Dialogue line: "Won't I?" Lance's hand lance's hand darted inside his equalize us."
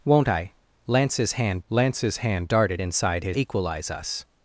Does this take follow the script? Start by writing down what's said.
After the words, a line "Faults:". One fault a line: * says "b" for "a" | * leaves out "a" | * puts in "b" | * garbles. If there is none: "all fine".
"Won't I?" Lance's hand lance's hand darted inside his equalize us."
Faults:
all fine